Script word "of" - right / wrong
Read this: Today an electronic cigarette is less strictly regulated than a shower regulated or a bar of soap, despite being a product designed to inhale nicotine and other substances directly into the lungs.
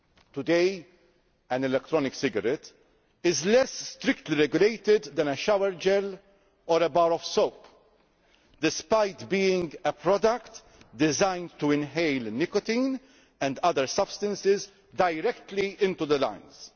right